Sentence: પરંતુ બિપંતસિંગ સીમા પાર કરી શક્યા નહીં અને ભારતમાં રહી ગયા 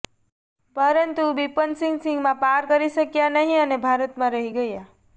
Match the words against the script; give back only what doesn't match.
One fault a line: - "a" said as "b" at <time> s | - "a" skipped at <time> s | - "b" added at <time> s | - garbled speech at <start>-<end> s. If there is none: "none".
none